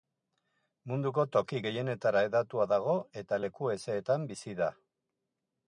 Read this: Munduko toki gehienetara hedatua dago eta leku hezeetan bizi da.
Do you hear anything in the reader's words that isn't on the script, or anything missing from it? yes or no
no